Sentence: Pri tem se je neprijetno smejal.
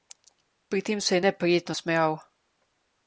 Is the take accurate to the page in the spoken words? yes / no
yes